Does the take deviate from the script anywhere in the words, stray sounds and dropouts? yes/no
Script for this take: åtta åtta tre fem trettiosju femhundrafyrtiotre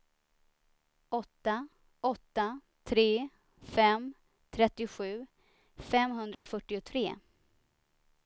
yes